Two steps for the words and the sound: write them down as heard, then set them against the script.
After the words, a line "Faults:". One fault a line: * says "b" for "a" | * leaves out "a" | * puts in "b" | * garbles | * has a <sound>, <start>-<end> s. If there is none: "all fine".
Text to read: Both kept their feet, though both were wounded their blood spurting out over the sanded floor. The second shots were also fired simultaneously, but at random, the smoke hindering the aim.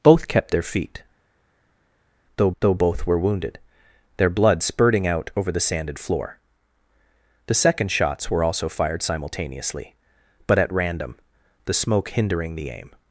Both kept their feet, though though both were wounded their blood spurting out over the sanded floor. The second shots were also fired simultaneously, but at random, the smoke hindering the aim.
Faults:
* puts in "though"